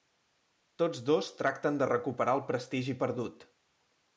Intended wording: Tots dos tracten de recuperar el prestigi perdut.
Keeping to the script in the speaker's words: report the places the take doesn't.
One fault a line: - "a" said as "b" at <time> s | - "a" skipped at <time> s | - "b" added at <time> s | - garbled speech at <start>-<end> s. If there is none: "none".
none